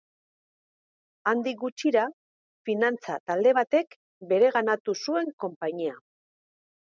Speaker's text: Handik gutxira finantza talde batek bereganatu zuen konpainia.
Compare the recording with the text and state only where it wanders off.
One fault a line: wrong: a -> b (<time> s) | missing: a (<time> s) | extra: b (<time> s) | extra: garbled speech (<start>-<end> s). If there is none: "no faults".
no faults